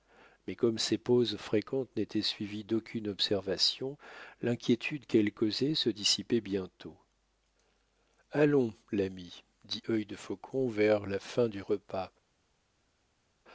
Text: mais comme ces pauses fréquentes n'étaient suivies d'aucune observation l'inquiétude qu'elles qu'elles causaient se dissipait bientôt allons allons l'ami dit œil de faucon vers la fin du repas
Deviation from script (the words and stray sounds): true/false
true